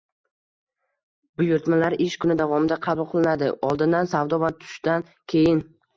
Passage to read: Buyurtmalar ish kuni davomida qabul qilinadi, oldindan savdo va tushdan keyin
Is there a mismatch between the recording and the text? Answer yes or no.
no